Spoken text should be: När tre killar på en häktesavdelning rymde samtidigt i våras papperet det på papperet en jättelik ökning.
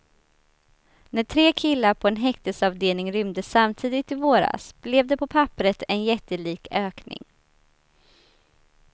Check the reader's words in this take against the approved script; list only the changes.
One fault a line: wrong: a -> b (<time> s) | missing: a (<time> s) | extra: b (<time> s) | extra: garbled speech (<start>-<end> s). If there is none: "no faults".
wrong: papperet -> blev (4.8 s)